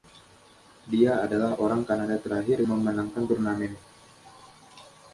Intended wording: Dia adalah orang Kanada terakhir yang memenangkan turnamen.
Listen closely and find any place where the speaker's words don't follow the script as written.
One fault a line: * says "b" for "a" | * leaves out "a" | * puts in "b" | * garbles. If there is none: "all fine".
* leaves out "yang"